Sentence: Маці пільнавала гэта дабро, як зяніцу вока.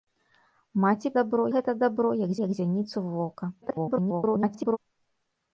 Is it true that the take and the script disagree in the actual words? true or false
true